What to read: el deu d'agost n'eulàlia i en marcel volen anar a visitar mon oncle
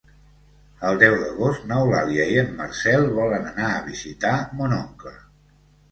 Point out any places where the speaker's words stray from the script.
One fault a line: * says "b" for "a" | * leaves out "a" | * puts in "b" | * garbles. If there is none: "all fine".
all fine